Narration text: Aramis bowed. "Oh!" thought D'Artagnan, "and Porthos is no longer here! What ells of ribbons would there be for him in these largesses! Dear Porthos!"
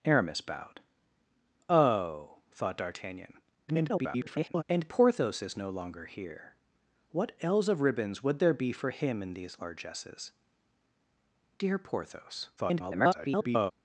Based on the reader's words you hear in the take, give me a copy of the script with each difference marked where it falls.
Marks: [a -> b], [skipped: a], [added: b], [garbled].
Aramis bowed. "Oh!" thought D'Artagnan, [garbled] "and Porthos is no longer here! What ells of ribbons would there be for him in these largesses! Dear Porthos!" [garbled]